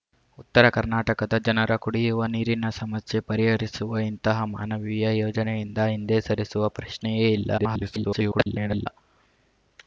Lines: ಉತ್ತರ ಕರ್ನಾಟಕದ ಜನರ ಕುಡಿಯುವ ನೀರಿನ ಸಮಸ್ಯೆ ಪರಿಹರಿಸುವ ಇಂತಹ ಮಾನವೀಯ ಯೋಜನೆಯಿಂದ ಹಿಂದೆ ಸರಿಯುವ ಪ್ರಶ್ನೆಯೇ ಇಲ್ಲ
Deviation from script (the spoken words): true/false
true